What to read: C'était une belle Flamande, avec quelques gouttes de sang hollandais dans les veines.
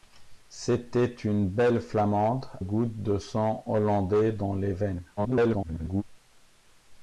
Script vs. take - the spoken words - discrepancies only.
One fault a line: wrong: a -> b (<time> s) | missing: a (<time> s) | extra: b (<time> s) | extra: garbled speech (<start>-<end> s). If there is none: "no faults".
missing: avec quelques (2.5 s)
extra: garbled speech (5.2-6.0 s)